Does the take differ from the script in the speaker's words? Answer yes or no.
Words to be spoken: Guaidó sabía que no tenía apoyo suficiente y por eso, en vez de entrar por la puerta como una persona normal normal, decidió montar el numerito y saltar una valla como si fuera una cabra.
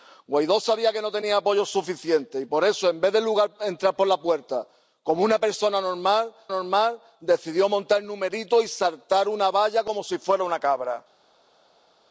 no